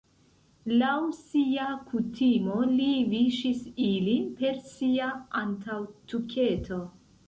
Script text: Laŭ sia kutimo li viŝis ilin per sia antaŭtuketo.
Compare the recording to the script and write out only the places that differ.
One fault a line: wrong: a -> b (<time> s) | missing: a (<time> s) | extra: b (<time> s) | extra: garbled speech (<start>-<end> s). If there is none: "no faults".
no faults